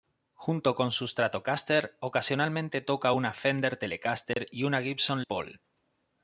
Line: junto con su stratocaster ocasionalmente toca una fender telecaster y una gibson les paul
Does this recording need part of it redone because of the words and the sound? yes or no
yes